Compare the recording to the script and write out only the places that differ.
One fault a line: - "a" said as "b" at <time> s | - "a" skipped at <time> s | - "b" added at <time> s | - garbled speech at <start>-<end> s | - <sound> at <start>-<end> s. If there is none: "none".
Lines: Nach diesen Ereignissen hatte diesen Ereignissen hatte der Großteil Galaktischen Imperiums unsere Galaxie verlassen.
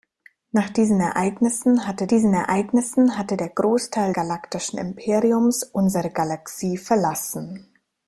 none